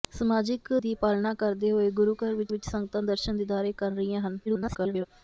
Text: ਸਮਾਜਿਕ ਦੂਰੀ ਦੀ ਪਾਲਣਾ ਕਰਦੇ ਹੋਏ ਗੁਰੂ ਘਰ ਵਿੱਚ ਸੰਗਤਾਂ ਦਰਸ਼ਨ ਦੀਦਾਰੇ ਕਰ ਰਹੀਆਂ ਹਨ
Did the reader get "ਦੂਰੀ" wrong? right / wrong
wrong